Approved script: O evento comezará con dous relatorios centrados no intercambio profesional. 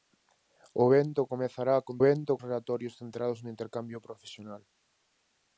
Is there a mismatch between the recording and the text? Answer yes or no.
yes